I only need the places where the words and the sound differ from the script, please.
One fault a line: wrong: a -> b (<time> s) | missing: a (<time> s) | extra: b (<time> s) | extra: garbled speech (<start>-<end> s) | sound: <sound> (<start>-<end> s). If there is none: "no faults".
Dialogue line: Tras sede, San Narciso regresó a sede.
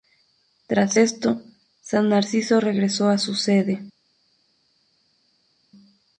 wrong: sede -> esto (0.9 s)
extra: su (3.2 s)